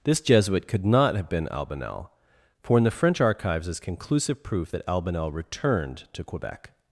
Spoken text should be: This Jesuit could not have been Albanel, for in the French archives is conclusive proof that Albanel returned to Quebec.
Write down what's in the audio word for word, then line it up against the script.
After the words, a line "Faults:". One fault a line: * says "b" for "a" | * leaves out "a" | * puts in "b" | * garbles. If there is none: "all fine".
This Jesuit could not have been Albanel, for in the French archives is conclusive proof that Albanel returned to Quebec.
Faults:
all fine